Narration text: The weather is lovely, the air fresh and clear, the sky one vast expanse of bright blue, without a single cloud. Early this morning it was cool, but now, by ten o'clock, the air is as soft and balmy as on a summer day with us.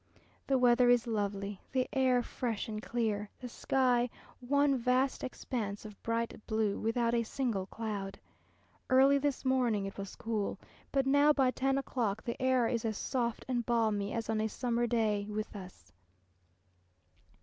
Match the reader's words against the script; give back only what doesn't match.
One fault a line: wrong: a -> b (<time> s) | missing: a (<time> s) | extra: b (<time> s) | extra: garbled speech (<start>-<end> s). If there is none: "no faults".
no faults